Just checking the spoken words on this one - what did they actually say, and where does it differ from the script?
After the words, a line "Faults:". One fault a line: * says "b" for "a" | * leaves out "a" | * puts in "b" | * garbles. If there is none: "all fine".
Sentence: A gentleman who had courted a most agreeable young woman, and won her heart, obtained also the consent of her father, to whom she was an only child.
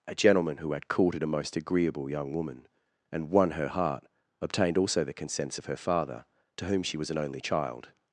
A gentleman who had courted a most agreeable young woman, and won her heart, obtained also the consents of her father, to whom she was an only child.
Faults:
* says "consents" for "consent"